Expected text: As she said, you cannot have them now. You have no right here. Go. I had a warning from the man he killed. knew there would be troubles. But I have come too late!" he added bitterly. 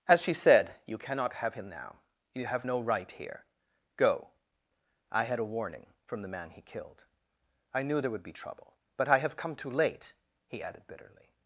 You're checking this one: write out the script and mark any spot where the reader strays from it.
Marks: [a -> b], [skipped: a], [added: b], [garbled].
As she said, you cannot have [them -> him] now. You have no right here. Go. I had a warning from the man he killed. [added: I] knew there would be [troubles. -> trouble] But I have come too late!" he added bitterly.